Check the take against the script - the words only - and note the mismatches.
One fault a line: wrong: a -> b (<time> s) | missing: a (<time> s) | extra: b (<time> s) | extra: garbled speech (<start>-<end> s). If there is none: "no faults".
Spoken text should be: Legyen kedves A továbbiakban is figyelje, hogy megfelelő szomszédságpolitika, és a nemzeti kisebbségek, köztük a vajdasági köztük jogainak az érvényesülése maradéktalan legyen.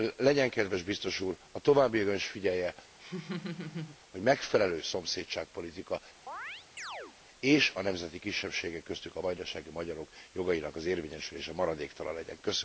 extra: Biztos Úr (0.8 s)
wrong: köztük -> magyarok (9.7 s)